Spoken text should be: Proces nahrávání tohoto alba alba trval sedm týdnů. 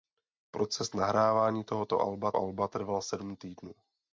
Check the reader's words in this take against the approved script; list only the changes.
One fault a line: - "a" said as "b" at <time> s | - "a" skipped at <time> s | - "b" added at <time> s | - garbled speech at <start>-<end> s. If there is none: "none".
none